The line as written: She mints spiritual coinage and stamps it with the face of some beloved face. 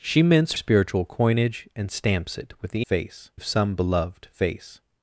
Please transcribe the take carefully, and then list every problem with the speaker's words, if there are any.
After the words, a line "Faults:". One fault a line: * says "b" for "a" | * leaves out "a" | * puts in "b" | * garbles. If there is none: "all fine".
She mints spiritual coinage and stamps it with the face of some beloved face.
Faults:
all fine